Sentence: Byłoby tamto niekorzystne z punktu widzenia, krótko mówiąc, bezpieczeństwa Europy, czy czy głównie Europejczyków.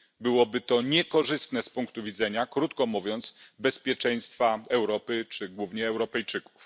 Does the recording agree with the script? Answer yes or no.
no